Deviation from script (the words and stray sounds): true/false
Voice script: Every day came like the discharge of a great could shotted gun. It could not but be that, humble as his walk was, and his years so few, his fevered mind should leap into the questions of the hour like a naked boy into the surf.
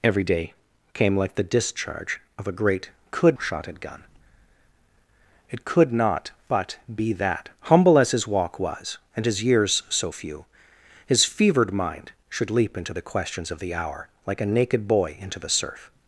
false